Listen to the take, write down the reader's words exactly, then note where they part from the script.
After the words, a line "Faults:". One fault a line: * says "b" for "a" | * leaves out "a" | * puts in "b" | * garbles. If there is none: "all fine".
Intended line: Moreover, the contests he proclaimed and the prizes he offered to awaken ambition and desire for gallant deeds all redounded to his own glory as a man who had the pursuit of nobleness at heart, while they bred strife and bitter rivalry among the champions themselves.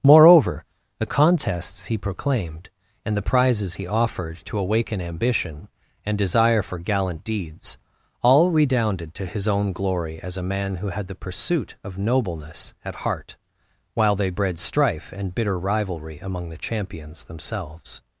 Moreover, the contests he proclaimed and the prizes he offered to awaken ambition and desire for gallant deeds all redounded to his own glory as a man who had the pursuit of nobleness at heart, while they bred strife and bitter rivalry among the champions themselves.
Faults:
all fine